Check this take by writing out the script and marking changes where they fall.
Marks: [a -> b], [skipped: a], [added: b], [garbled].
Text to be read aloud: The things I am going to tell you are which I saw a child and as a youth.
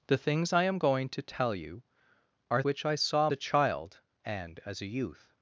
The things I am going to tell you are which I saw a child and as a youth.